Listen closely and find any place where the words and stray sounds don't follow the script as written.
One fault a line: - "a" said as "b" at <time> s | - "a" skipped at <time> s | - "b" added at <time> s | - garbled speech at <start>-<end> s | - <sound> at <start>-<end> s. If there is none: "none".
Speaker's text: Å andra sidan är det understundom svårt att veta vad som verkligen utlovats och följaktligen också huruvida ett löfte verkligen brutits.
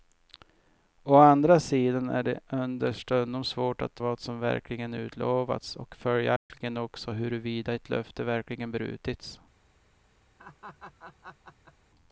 - "veta" skipped at 4.0 s
- dropout at 6.4-6.5 s
- laugh at 10.4-11.7 s